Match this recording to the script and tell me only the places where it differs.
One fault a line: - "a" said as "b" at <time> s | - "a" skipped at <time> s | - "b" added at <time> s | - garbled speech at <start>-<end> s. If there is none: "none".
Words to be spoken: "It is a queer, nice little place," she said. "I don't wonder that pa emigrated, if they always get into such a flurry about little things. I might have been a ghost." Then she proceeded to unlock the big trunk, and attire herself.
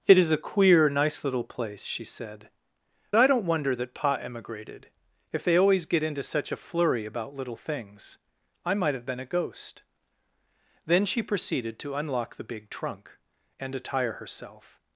none